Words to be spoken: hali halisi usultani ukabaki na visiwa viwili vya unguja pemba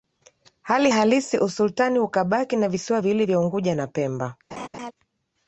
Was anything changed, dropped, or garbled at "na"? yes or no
no